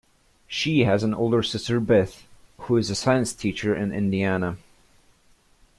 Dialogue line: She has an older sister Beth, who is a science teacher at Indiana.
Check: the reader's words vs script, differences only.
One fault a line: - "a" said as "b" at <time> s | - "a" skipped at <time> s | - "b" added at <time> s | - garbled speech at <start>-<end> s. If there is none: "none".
- "at" said as "in" at 3.7 s